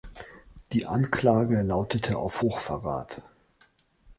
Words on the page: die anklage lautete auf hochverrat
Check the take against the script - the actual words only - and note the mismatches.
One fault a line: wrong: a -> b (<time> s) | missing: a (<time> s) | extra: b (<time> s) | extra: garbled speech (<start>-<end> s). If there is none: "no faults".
no faults